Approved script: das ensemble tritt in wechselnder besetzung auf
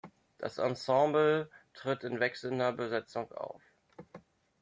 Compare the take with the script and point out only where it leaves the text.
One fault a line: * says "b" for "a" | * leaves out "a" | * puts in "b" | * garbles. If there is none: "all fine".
all fine